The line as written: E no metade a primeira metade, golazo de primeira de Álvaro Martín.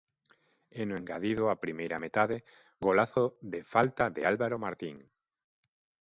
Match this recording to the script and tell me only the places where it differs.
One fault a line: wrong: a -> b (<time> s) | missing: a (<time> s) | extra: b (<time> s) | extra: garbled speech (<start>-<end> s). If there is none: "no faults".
wrong: metade -> engadido (1.0 s)
wrong: primeira -> falta (3.7 s)